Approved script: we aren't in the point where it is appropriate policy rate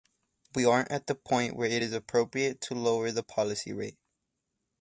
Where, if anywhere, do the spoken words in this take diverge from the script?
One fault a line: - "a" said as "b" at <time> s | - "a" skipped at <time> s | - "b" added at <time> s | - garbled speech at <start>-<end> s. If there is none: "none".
- "in" said as "at" at 0.9 s
- "to lower the" added at 2.6 s